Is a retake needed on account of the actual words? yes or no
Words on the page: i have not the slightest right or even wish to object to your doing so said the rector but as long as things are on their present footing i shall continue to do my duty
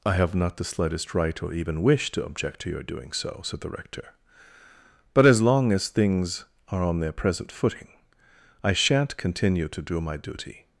yes